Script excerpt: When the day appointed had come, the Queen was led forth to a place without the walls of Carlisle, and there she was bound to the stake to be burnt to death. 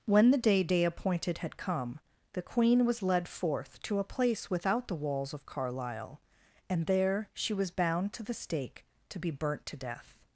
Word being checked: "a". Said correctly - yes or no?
yes